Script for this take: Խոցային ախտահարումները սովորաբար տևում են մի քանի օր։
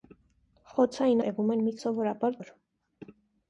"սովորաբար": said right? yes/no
no